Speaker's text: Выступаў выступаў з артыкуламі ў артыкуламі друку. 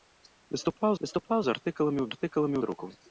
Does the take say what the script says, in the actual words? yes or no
yes